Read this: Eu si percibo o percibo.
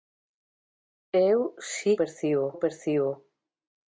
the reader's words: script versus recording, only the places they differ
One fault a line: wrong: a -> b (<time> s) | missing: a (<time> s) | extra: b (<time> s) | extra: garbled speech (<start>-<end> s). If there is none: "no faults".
no faults